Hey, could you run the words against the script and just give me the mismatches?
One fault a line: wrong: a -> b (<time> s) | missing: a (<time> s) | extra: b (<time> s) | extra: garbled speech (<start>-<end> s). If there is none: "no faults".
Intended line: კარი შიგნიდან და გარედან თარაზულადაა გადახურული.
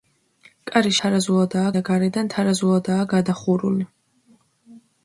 wrong: შიგნიდან -> თარაზულადაა (1.0 s)